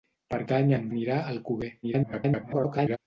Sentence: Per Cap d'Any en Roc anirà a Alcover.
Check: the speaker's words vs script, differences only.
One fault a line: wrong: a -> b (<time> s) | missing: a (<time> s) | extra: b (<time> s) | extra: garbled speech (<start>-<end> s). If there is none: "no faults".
missing: Cap (0.4 s)
missing: Roc (0.8 s)
extra: garbled speech (1.8-3.0 s)